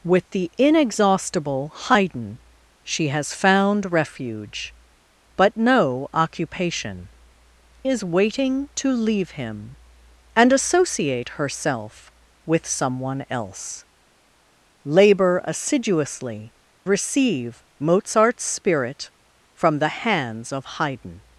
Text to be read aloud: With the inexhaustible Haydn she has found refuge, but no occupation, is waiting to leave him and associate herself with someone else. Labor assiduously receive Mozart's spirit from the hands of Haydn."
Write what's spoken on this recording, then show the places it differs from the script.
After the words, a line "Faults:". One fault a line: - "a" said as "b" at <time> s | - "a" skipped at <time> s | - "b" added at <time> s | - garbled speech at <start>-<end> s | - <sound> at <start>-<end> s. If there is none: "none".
With the inexhaustible Haydn she has found refuge, but no occupation, is waiting to leave him and associate herself with someone else. Labor assiduously receive Mozart's spirit from the hands of Haydn."
Faults:
none